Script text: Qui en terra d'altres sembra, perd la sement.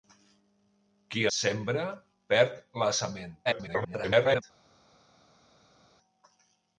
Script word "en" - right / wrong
wrong